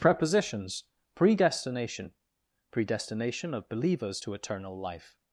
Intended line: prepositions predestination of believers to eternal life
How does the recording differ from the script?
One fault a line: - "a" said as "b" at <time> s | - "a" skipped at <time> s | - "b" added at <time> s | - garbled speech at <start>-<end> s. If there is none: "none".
- "predestination" added at 2.7 s